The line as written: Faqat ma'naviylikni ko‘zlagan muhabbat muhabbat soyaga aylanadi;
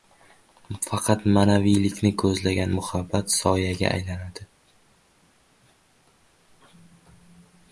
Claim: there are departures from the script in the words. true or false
true